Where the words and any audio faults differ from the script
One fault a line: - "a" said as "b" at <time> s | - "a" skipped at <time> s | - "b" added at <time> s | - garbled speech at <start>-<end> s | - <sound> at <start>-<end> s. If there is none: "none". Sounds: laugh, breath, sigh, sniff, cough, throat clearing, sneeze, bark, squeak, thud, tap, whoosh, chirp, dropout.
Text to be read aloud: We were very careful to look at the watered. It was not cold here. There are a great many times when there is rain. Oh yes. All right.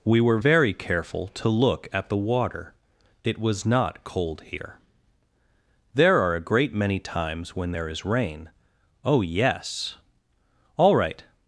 - "watered" said as "water" at 2.2 s